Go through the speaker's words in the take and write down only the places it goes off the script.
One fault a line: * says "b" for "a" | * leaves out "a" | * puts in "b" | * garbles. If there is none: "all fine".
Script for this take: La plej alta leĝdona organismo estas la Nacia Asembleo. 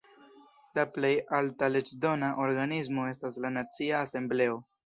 all fine